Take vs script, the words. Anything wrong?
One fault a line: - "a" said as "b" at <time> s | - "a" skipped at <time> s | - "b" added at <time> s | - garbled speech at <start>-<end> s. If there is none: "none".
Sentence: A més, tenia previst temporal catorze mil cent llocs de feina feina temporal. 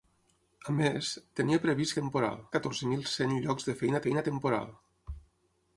none